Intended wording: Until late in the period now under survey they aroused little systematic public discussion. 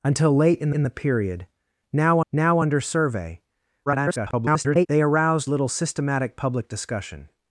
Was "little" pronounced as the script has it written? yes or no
yes